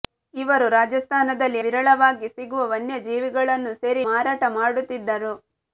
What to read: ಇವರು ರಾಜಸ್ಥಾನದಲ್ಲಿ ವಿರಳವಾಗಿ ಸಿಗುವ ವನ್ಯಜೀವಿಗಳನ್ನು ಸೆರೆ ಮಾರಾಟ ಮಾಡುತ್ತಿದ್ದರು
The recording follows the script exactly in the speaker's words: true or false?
true